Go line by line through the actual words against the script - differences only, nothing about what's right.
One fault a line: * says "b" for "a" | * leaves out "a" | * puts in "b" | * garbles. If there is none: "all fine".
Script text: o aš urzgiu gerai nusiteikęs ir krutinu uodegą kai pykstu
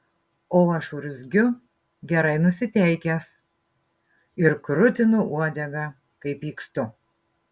all fine